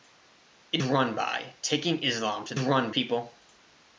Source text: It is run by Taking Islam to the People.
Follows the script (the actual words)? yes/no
no